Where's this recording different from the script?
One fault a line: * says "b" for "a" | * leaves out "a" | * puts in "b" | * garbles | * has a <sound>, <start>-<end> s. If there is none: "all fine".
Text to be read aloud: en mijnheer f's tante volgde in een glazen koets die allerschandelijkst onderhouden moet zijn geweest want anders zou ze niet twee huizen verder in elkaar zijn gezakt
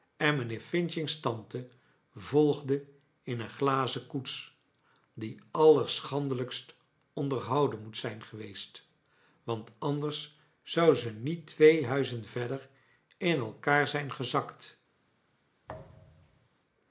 * has a thud, 15.7-16.5 s